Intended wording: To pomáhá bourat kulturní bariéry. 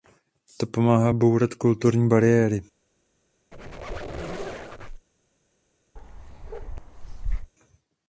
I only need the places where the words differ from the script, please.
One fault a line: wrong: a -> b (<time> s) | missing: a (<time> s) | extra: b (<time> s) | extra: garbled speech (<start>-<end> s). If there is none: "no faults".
no faults